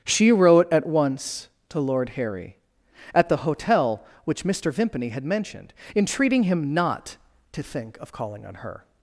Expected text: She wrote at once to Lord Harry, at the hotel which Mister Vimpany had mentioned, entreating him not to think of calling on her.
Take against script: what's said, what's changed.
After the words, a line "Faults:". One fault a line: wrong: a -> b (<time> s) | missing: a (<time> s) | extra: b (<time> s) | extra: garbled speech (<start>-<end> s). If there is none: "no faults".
She wrote at once to Lord Harry, at the hotel which Mister Vimpany had mentioned, entreating him not to think of calling on her.
Faults:
no faults